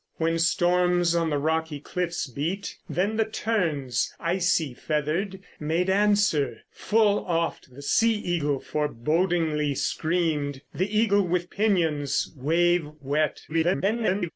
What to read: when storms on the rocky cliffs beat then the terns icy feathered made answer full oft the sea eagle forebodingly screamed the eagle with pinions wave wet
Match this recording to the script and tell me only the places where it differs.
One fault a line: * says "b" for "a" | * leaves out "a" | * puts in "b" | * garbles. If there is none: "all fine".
* garbles